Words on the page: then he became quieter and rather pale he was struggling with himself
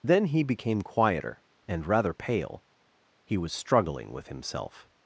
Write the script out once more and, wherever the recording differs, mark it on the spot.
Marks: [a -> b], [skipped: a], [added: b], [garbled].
then he became quieter and rather pale he was struggling with himself